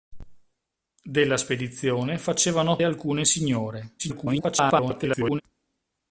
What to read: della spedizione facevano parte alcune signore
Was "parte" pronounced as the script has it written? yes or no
no